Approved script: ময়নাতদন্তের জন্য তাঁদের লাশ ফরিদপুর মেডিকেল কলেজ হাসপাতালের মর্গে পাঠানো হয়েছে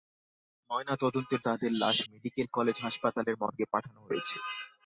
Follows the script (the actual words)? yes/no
no